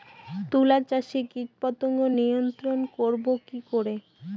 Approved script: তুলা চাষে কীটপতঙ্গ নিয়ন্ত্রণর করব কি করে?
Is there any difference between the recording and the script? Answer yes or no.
no